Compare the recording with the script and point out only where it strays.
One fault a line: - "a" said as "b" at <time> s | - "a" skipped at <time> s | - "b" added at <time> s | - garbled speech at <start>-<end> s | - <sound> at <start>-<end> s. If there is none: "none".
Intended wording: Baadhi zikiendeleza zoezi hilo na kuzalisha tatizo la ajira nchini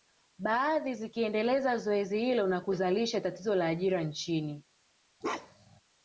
- bark at 5.2-5.8 s